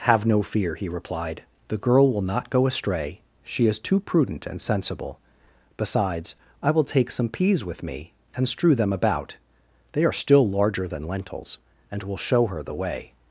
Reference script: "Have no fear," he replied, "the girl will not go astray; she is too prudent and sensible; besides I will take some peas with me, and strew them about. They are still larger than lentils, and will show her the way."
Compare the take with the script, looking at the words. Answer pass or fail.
pass